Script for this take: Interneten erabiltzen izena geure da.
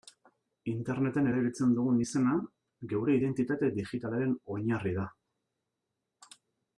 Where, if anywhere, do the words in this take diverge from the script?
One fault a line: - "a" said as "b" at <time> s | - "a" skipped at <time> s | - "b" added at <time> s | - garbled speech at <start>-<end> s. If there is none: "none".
- "dugun" added at 1.8 s
- "identitate digitalaren oinarri" added at 3.2 s